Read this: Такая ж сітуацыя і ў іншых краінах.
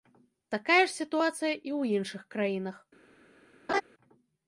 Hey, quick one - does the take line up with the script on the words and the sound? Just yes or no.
no